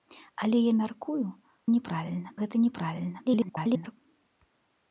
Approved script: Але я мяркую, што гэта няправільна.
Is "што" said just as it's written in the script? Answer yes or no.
no